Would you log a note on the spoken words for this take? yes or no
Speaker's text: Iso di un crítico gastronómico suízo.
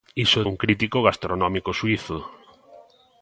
yes